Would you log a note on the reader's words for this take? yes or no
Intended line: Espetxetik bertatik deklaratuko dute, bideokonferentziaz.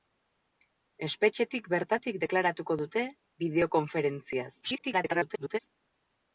yes